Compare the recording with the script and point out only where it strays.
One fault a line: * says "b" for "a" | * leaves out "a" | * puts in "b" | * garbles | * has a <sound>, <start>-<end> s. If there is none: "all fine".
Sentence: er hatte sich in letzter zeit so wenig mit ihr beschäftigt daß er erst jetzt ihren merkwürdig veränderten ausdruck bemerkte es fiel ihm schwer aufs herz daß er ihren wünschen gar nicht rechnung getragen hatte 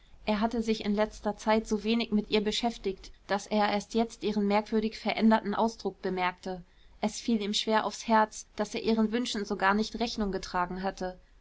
* puts in "so"